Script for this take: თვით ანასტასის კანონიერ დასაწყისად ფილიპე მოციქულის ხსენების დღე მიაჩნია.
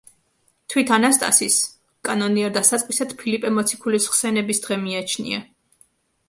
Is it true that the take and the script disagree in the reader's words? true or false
false